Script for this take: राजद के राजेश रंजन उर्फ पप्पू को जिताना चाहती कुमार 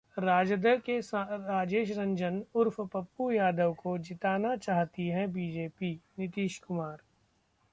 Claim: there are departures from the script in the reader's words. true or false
true